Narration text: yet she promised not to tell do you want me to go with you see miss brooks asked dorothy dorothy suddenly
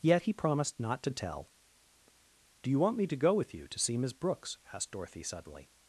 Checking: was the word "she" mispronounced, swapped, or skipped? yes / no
yes